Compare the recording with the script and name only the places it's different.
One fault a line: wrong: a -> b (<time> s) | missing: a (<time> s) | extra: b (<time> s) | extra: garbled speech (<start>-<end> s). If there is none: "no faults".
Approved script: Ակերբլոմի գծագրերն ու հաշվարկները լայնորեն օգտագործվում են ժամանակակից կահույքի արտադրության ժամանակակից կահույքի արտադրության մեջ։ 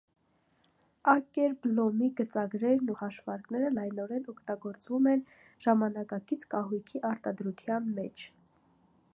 missing: ժամանակակից կահույքի արտադրության (7.9 s)